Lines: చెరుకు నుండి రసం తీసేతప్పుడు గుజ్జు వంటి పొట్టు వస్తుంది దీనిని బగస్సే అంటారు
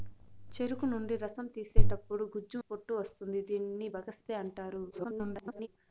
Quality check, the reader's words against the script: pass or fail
fail